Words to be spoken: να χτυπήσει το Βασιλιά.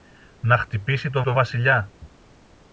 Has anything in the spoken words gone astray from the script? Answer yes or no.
yes